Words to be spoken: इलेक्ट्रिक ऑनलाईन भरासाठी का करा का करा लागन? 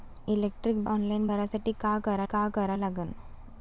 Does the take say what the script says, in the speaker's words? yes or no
yes